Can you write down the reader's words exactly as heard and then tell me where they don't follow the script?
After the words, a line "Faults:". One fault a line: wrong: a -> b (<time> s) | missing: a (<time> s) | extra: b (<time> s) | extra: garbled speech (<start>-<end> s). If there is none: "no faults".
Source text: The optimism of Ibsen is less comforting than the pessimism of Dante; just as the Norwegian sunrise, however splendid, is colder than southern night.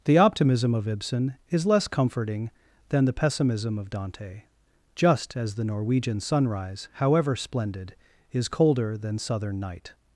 The optimism of Ibsen is less comforting than the pessimism of Dante; just as the Norwegian sunrise, however splendid, is colder than southern night.
Faults:
no faults